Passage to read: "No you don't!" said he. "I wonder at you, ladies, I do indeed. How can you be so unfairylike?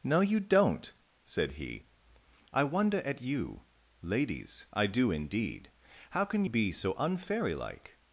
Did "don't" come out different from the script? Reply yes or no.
no